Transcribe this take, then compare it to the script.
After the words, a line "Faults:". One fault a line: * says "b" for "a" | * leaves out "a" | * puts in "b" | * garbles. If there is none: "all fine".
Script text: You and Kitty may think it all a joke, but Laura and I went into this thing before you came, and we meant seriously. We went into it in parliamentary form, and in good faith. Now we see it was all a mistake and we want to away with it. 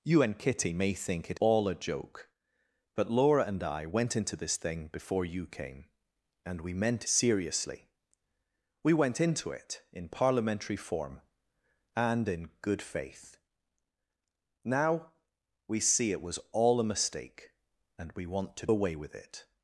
You and Kitty may think it all a joke, but Laura and I went into this thing before you came, and we meant seriously. We went into it in parliamentary form, and in good faith. Now we see it was all a mistake and we want to away with it.
Faults:
all fine